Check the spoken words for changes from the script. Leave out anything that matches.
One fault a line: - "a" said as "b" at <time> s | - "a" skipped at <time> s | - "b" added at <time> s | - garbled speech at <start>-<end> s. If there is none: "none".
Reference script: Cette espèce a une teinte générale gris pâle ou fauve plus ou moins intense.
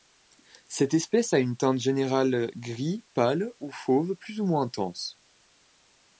none